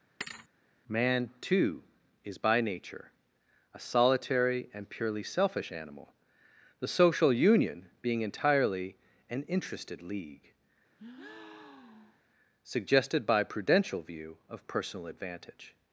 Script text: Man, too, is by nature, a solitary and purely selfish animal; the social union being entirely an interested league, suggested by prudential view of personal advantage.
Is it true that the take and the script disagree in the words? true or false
false